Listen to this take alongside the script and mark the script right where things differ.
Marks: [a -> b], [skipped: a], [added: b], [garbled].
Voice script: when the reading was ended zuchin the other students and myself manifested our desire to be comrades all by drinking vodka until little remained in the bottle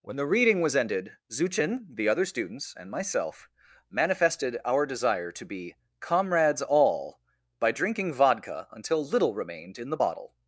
when the reading was ended zuchin the other students and myself manifested our desire to be comrades all by drinking vodka until little remained in the bottle